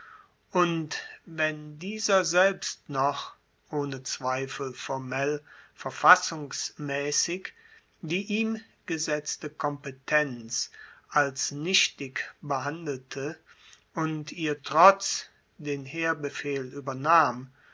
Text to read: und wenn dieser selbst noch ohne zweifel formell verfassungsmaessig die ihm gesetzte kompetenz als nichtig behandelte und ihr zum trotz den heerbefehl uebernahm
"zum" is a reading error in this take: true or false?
true